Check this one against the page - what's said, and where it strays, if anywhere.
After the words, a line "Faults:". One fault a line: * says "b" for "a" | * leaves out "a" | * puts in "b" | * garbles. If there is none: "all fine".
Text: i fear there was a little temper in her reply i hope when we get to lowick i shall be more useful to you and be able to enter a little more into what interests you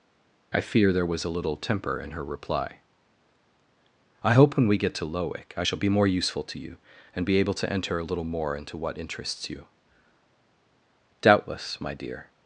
i fear there was a little temper in her reply i hope when we get to lowick i shall be more useful to you and be able to enter a little more into what interests you doubtless my dear
Faults:
* puts in "doubtless my dear"